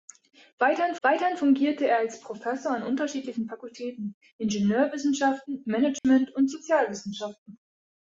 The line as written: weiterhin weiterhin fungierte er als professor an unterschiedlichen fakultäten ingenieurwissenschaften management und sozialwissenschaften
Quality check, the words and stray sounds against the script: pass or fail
fail